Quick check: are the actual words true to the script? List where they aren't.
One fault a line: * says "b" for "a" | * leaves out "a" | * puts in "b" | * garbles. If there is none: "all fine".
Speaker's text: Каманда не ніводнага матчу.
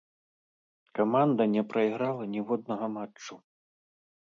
* puts in "прайграла"